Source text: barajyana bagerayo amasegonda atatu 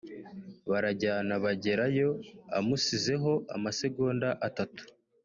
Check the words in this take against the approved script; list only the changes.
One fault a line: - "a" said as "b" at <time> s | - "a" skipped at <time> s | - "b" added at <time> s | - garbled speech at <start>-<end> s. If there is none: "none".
- "amusizeho" added at 2.6 s